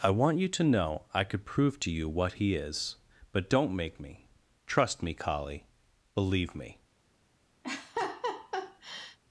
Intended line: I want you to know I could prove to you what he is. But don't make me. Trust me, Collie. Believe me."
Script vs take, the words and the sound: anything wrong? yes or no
yes